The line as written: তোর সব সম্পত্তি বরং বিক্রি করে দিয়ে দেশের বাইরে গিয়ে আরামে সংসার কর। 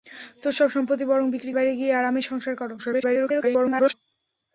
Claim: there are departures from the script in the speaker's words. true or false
true